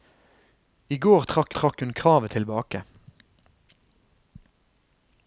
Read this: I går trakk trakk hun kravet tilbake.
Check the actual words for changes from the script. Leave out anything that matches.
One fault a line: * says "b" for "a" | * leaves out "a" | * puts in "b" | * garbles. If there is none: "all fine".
all fine